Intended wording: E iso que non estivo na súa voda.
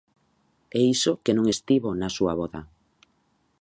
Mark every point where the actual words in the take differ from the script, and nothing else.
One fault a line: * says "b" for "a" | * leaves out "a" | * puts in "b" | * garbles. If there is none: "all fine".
all fine